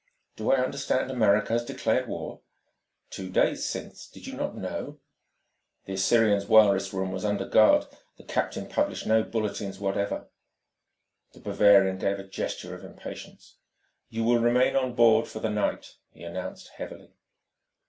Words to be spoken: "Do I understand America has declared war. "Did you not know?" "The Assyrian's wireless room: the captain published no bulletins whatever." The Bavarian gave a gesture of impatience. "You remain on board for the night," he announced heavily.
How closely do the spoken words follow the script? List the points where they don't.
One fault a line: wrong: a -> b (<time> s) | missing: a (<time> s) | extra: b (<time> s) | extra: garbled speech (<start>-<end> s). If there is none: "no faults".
extra: Two days since (3.1 s)
extra: was under guard (7.1 s)
extra: will (14.2 s)